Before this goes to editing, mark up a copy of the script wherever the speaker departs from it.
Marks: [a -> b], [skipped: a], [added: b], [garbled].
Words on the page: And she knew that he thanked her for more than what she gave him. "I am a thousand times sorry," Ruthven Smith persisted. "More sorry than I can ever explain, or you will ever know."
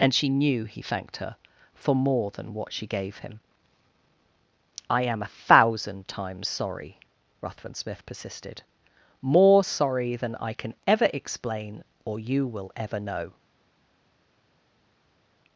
And she knew [skipped: that] he thanked her for more than what she gave him. "I am a thousand times sorry," Ruthven Smith persisted. "More sorry than I can ever explain, or you will ever know."